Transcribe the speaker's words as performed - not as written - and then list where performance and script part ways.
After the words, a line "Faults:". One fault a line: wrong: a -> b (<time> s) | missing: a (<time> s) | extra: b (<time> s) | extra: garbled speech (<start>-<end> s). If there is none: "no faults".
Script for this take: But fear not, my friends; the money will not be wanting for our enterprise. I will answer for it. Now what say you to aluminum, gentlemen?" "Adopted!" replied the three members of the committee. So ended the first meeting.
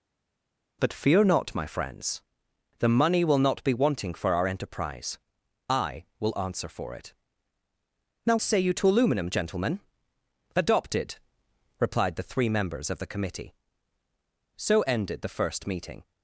But fear not, my friends; the money will not be wanting for our enterprise. I will answer for it. Now say you to aluminum, gentlemen?" "Adopted!" replied the three members of the committee. So ended the first meeting.
Faults:
missing: what (8.4 s)